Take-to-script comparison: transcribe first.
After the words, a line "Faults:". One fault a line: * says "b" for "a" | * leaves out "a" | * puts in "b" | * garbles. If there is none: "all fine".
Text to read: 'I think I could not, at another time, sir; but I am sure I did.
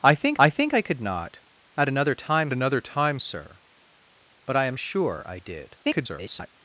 'I think I think I could not, at another time another time, sir; but I am sure I did. [garbled]
Faults:
* puts in "think I"
* puts in "another time"
* garbles